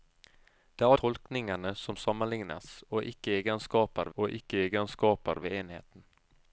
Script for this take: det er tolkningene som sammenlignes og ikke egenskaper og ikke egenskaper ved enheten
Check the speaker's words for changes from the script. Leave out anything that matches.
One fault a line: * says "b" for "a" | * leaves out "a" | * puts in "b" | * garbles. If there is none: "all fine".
all fine